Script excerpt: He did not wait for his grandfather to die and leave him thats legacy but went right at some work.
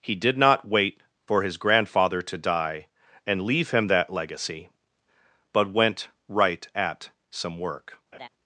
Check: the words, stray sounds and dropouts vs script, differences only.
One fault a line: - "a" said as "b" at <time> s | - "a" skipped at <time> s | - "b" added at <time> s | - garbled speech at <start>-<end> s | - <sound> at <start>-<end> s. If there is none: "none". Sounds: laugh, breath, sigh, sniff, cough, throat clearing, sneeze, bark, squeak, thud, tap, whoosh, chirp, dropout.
- "thats" said as "that" at 3.9 s
- laugh at 8.1-8.3 s